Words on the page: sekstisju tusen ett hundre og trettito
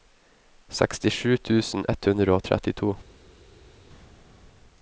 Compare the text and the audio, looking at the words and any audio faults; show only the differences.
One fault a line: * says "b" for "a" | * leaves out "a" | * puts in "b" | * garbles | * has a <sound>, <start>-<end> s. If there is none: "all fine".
all fine